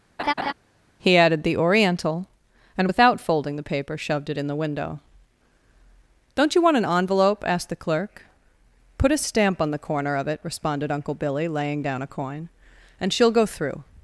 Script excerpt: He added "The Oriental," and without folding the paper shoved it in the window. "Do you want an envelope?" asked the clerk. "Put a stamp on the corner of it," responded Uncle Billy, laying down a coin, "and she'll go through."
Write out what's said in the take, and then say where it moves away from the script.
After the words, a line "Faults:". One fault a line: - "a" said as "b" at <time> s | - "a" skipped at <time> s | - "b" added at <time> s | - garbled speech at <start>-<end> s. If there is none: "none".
He added "The Oriental," and without folding the paper shoved it in the window. "Don't you want an envelope?" asked the clerk. "Put a stamp on the corner of it," responded Uncle Billy, laying down a coin, "and she'll go through."
Faults:
- "Do" said as "Don't" at 6.3 s